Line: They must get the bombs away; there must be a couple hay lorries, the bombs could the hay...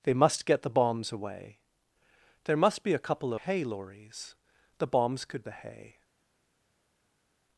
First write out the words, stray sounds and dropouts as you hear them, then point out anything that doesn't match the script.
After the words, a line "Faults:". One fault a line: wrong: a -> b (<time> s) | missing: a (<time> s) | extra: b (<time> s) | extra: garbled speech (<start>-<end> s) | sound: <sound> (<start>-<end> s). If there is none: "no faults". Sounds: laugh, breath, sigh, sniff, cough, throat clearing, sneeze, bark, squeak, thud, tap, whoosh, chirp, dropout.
They must get the bombs away; there must be a couple hay lorries, the bombs could the hay...
Faults:
no faults